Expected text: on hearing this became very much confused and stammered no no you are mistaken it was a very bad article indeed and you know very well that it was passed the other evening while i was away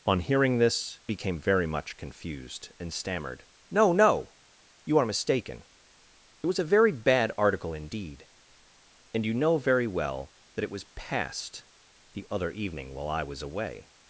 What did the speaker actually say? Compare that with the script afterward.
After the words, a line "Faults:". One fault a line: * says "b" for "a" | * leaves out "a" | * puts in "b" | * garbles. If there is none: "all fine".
on hearing this became very much confused and stammered no no you are mistaken it was a very bad article indeed and you know very well that it was passed the other evening while i was away
Faults:
all fine